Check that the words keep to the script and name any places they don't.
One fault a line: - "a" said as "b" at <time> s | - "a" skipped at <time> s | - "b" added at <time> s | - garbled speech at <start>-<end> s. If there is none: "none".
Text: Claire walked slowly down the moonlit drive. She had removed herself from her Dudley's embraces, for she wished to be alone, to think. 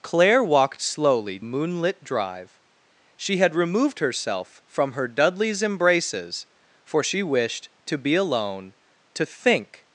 - "down the" skipped at 1.4 s